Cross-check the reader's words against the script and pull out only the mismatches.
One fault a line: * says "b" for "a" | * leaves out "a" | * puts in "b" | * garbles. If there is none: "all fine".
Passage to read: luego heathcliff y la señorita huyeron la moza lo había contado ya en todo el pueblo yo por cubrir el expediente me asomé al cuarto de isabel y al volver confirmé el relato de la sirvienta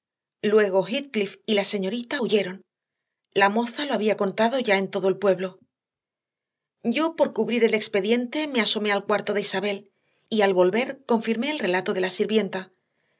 all fine